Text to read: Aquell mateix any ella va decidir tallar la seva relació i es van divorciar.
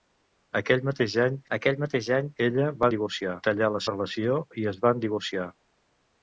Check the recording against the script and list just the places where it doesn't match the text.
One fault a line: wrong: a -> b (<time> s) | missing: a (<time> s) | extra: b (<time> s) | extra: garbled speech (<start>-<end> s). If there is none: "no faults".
extra: aquell mateix any (1.6 s)
wrong: decidir -> divorciar (3.0 s)
missing: seva (3.8 s)